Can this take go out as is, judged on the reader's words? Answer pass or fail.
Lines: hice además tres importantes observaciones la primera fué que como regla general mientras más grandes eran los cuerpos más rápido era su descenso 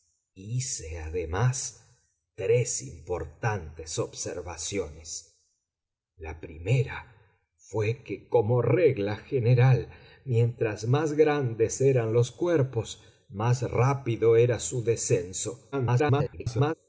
fail